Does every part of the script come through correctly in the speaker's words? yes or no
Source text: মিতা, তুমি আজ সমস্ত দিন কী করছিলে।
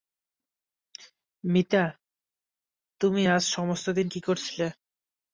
yes